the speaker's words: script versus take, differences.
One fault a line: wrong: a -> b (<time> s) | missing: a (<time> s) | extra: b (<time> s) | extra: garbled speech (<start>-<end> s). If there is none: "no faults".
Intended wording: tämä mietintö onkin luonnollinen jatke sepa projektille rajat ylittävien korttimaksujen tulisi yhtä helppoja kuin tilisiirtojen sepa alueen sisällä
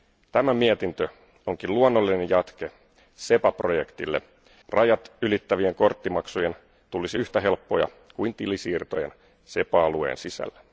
no faults